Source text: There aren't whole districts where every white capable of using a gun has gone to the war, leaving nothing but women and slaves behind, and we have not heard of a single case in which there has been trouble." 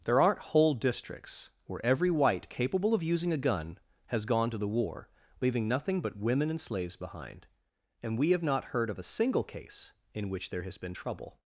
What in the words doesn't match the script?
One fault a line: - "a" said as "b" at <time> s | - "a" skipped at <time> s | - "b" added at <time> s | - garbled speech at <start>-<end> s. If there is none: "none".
none